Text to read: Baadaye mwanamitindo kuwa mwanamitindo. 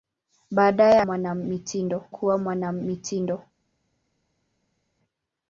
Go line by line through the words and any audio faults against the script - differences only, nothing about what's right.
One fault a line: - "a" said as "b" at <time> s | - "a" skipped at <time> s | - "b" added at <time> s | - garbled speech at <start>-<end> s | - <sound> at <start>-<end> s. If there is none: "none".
none